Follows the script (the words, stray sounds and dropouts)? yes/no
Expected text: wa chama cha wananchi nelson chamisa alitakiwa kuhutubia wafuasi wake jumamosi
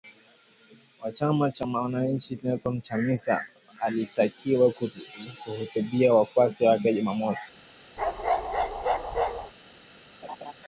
no